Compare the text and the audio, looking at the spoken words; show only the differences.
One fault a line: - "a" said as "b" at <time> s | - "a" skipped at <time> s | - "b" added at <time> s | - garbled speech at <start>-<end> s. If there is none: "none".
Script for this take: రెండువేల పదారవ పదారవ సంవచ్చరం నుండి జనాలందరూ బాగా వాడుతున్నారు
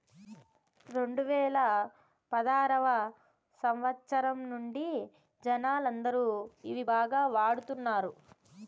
- "పదారవ" skipped at 2.9 s
- "ఇవి" added at 6.7 s